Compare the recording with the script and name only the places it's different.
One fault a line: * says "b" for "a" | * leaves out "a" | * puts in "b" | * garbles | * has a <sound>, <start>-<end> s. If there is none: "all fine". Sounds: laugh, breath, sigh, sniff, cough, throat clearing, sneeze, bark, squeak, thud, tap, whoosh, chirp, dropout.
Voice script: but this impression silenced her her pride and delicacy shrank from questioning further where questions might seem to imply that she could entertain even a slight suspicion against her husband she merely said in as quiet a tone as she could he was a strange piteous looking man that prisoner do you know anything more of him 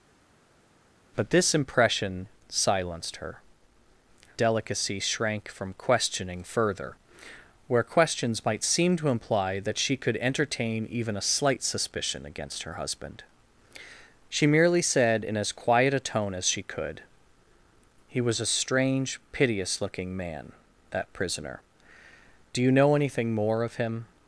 * leaves out "her pride and"